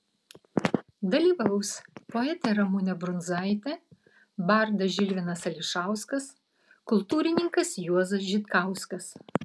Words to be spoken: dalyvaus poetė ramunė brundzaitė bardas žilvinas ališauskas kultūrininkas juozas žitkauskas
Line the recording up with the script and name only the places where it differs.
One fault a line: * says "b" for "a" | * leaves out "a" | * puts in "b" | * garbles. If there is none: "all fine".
all fine